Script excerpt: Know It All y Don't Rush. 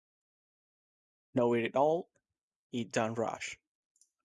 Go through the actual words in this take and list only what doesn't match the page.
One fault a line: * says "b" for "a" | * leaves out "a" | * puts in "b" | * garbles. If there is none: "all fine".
all fine